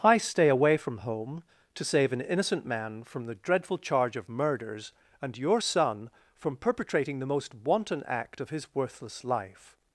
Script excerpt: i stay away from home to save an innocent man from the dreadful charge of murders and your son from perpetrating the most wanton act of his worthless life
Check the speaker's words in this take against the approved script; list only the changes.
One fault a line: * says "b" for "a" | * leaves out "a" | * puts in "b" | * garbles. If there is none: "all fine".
all fine